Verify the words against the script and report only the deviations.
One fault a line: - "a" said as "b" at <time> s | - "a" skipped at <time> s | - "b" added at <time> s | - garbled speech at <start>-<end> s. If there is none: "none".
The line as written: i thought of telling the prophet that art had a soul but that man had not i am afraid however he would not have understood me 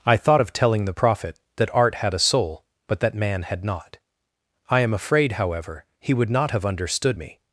none